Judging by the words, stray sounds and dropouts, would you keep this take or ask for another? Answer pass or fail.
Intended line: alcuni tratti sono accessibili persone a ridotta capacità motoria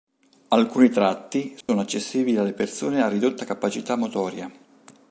fail